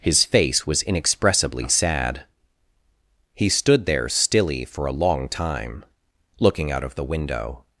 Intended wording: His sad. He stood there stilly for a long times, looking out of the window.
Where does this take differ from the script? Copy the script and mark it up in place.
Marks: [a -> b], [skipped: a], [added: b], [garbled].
His [added: face was inexpressibly] sad. He stood there stilly for a long [times, -> time] looking out of the window.